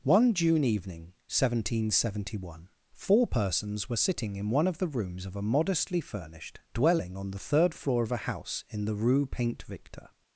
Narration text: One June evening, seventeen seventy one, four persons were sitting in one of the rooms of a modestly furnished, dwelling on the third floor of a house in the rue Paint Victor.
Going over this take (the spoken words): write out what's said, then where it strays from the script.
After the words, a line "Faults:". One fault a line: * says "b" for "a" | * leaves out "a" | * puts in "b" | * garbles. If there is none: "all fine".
One June evening, seventeen seventy one, four persons were sitting in one of the rooms of a modestly furnished, dwelling on the third floor of a house in the rue Paint Victor.
Faults:
all fine